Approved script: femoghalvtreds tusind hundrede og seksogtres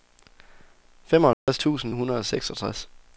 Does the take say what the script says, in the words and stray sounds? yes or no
no